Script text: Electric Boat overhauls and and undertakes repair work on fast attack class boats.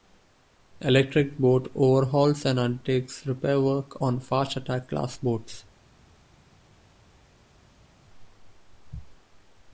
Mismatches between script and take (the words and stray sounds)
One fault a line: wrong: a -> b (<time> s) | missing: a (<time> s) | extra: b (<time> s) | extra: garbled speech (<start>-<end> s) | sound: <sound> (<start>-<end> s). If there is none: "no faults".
missing: and (2.6 s)